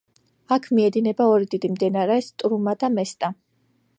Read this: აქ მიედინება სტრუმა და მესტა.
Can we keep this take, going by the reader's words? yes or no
no